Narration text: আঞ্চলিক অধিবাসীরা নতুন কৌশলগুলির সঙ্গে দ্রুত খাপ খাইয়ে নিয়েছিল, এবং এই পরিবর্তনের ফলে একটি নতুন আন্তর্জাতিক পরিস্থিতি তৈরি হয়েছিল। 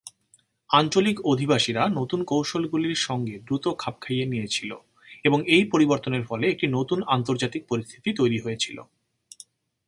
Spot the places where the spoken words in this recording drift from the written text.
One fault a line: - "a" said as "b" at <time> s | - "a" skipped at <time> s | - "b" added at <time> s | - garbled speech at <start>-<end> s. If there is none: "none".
none